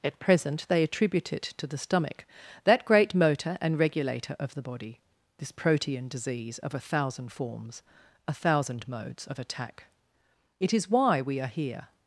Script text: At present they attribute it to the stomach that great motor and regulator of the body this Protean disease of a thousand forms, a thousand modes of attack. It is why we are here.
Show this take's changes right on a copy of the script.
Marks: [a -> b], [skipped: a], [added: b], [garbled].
At present they attribute it to the stomach that great motor and regulator of the body this Protean disease of a thousand forms, a thousand modes of attack. It is why we are here.